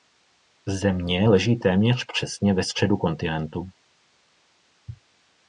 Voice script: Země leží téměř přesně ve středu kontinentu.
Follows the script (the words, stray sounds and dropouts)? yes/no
yes